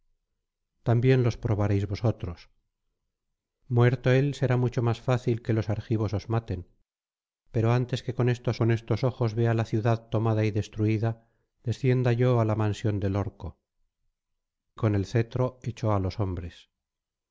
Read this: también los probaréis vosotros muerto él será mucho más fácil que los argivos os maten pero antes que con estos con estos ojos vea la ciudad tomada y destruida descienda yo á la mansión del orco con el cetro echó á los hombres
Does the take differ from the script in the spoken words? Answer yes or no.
no